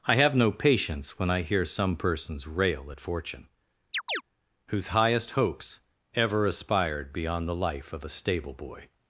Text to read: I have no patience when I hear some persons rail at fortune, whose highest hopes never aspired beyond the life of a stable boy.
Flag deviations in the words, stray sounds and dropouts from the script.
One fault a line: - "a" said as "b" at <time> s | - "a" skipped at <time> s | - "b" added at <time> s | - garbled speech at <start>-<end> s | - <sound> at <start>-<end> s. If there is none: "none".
- chirp at 3.9-4.2 s
- "never" said as "ever" at 6.1 s